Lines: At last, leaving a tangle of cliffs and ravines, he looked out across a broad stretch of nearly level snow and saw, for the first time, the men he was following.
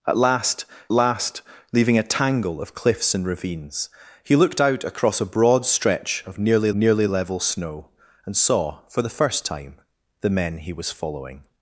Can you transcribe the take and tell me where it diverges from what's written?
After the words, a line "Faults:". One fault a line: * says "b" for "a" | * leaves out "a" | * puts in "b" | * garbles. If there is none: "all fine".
At last last, leaving a tangle of cliffs and ravines, he looked out across a broad stretch of nearly nearly level snow and saw, for the first time, the men he was following.
Faults:
* puts in "last"
* puts in "nearly"